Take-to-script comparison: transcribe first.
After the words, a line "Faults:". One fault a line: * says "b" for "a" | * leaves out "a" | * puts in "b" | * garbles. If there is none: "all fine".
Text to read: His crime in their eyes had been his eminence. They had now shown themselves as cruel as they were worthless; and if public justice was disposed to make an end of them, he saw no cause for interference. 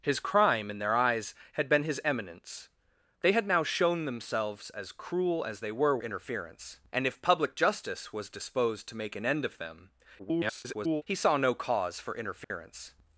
His crime in their eyes had been his eminence. They had now shown themselves as cruel as they were interference; and if public justice was disposed to make an end of them, [garbled] he saw no cause for interference.
Faults:
* says "interference" for "worthless"
* garbles